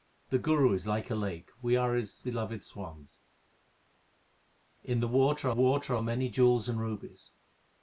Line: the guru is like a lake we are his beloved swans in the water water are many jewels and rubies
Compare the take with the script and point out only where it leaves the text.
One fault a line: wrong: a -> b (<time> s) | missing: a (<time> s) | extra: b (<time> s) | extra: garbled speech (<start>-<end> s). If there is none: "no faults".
no faults